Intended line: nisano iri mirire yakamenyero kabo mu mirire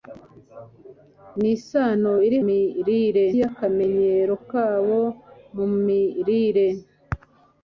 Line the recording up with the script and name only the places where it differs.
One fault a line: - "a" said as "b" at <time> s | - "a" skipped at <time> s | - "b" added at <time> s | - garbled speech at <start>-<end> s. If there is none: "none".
none